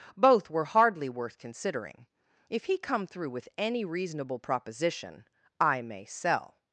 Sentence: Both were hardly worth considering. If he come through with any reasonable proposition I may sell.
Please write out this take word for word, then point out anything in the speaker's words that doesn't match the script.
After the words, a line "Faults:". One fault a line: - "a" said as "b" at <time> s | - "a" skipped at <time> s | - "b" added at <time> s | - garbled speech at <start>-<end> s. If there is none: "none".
Both were hardly worth considering. If he come through with any reasonable proposition I may sell.
Faults:
none